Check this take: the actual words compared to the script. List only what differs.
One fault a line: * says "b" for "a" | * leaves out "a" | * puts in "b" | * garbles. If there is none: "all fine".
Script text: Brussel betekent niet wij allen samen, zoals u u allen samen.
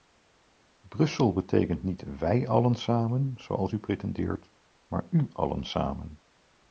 * puts in "pretendeert maar"